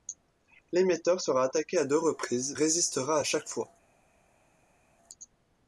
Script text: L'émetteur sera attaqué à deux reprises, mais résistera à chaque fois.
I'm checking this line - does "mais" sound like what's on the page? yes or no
no